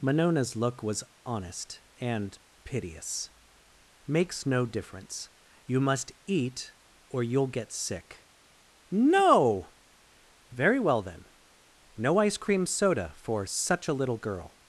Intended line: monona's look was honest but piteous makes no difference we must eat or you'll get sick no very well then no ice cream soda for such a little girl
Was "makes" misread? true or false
false